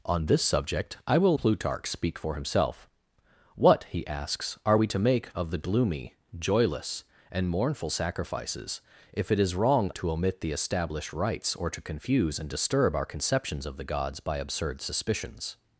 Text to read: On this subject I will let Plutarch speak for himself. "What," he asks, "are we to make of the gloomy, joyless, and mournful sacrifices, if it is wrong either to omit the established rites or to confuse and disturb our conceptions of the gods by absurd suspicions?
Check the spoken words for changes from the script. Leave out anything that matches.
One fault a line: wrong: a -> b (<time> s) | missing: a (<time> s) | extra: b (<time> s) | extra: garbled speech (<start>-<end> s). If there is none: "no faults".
missing: let (1.4 s)
missing: either (9.9 s)